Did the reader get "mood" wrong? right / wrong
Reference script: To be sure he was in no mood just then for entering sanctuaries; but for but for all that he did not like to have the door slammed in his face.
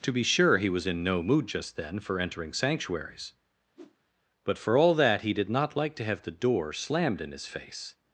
right